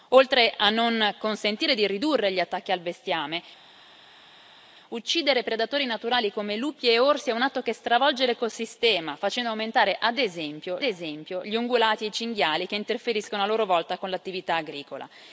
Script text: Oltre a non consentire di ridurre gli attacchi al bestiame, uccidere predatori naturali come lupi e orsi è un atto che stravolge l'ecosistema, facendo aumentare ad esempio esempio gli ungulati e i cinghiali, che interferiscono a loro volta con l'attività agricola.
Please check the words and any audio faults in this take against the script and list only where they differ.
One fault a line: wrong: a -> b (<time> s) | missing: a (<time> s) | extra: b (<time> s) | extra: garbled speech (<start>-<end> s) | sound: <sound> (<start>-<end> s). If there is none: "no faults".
no faults